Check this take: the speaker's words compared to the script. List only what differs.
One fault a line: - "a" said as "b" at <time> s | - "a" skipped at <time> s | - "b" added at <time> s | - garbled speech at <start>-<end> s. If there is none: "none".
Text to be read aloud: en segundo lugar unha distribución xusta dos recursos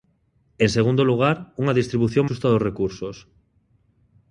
none